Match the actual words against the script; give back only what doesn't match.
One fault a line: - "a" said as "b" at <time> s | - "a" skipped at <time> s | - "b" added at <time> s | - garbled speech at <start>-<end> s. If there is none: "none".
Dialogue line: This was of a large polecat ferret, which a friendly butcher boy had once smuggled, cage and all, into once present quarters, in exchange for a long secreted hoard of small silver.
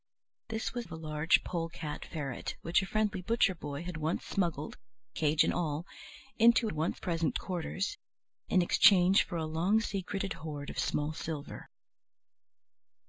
none